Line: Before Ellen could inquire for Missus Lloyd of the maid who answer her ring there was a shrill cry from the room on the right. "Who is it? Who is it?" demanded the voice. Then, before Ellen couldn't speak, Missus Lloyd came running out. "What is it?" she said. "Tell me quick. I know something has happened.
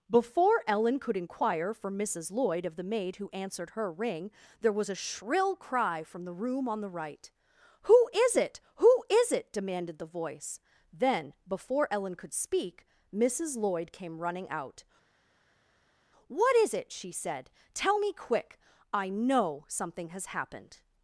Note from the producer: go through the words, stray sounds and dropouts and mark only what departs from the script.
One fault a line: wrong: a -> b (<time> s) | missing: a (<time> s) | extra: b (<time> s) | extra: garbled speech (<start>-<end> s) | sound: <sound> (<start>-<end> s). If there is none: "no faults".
wrong: answer -> answered (3.3 s)
wrong: couldn't -> could (12.1 s)